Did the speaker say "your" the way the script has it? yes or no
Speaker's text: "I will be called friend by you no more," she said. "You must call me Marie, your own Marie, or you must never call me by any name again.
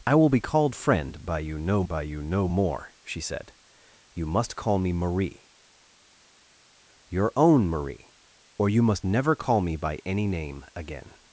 yes